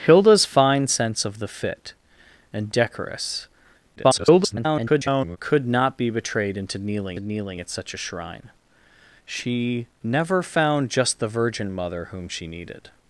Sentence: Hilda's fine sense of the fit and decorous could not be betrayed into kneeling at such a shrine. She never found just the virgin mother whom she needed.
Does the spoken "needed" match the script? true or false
true